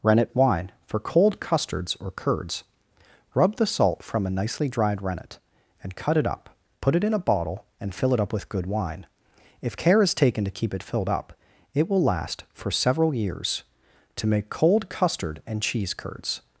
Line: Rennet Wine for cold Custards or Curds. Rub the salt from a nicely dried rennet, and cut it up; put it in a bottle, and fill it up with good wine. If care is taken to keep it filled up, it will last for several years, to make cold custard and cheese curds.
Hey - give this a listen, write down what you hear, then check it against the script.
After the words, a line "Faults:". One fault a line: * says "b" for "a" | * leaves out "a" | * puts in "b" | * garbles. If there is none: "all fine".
Rennet Wine for cold Custards or Curds. Rub the salt from a nicely dried rennet, and cut it up; put it in a bottle, and fill it up with good wine. If care is taken to keep it filled up, it will last for several years, to make cold custard and cheese curds.
Faults:
all fine